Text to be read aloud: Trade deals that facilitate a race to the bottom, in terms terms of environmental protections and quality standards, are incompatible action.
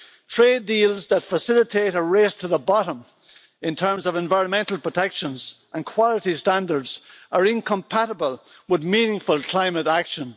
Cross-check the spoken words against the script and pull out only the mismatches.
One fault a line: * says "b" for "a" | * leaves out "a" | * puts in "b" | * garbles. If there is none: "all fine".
* leaves out "terms"
* puts in "with meaningful climate"